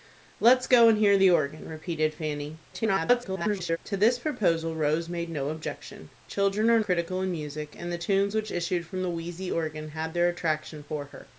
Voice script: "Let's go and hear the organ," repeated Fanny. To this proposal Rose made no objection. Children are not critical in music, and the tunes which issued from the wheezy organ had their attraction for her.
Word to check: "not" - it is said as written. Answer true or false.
false